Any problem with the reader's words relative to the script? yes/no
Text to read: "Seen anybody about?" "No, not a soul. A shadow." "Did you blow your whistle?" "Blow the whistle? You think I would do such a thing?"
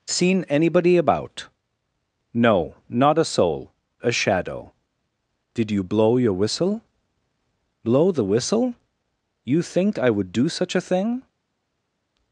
no